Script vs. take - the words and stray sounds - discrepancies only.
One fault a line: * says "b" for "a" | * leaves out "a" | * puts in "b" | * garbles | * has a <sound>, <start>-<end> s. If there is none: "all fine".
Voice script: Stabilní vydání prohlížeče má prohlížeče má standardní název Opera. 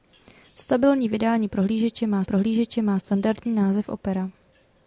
all fine